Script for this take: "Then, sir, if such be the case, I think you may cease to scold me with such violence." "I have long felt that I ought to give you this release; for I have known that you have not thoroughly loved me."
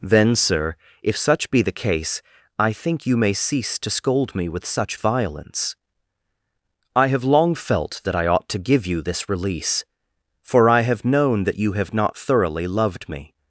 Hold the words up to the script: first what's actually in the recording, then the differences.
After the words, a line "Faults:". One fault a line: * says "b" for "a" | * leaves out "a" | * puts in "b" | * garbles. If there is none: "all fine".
"Then, sir, if such be the case, I think you may cease to scold me with such violence." "I have long felt that I ought to give you this release; for I have known that you have not thoroughly loved me."
Faults:
all fine